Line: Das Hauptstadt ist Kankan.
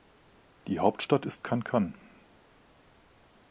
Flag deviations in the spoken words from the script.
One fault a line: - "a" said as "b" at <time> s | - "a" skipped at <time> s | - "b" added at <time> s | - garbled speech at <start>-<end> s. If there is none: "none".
- "Das" said as "Die" at 0.7 s